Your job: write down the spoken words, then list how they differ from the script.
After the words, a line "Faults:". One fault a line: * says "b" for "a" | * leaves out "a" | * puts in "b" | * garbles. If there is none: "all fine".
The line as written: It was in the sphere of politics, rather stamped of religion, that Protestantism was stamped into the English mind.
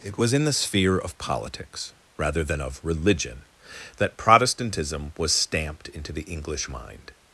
It was in the sphere of politics, rather than of religion, that Protestantism was stamped into the English mind.
Faults:
* says "than" for "stamped"